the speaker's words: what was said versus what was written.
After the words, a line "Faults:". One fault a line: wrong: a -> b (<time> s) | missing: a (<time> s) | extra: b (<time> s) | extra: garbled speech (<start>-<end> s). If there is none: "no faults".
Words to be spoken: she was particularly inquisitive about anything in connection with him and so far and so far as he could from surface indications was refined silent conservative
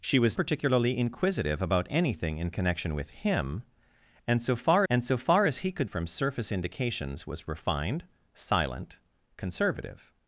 she was particularly inquisitive about anything in connection with him and so far and so far as he could from surface indications was refined silent conservative
Faults:
no faults